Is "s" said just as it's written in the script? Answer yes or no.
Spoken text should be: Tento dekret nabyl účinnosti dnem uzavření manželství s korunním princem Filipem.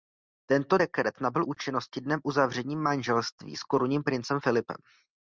yes